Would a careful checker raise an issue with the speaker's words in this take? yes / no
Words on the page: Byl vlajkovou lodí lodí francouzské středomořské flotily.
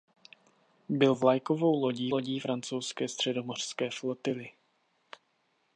no